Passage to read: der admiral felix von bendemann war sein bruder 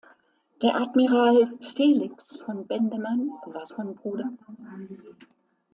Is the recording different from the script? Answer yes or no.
yes